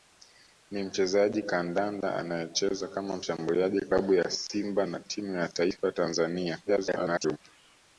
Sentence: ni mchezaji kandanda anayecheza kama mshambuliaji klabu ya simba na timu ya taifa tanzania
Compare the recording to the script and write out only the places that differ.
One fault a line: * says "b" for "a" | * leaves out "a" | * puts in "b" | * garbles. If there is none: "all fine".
* garbles